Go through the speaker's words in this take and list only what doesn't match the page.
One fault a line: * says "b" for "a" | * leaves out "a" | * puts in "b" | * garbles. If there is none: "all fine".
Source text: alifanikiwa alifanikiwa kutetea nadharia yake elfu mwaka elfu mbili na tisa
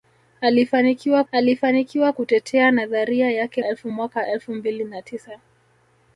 all fine